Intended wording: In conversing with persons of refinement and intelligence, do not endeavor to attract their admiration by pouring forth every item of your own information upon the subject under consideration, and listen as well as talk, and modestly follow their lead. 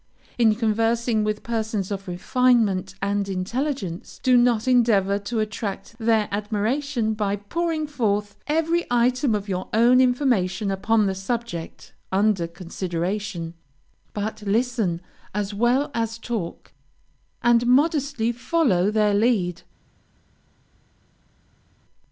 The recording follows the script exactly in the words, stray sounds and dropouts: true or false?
false